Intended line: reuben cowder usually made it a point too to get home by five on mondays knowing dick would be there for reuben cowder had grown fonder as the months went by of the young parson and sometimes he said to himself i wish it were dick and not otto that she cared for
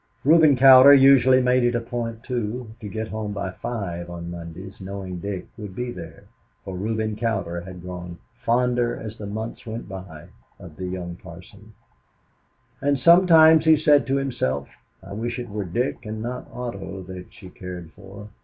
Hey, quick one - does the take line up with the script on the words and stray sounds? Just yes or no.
yes